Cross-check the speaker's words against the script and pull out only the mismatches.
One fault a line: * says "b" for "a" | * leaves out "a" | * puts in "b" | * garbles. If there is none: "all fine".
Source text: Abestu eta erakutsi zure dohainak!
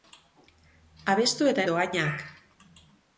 * leaves out "erakutsi zure"